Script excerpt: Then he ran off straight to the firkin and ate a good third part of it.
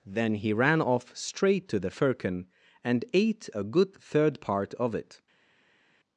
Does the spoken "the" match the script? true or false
true